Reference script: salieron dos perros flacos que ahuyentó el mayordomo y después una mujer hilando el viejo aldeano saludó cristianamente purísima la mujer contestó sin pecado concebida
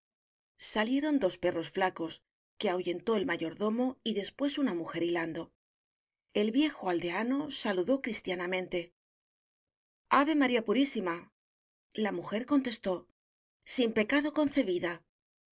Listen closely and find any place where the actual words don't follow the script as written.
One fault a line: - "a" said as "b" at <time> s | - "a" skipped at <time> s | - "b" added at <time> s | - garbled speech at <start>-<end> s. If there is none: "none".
- "ave maría" added at 10.1 s